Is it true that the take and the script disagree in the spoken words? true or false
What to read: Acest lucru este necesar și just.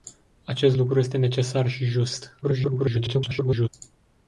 true